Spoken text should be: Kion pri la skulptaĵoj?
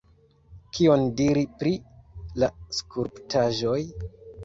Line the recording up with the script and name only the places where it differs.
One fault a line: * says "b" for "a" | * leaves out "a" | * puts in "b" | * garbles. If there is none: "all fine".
* puts in "diri"